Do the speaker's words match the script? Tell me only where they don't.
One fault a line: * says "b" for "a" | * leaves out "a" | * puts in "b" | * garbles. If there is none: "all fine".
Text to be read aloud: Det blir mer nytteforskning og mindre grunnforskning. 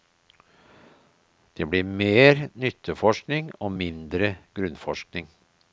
all fine